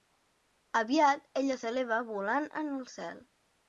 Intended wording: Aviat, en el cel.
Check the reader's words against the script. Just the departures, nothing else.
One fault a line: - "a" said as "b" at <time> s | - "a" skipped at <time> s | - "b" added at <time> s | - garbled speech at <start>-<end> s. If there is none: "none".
- "ella s'eleva volant" added at 1.4 s